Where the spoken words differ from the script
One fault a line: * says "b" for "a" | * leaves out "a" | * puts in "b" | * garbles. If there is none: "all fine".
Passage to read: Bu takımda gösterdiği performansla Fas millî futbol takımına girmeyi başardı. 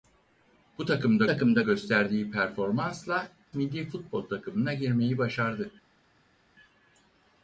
* puts in "takımda"
* leaves out "Fas"